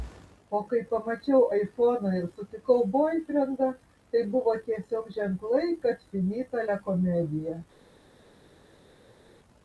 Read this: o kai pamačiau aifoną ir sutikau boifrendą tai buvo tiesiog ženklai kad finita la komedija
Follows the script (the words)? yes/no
yes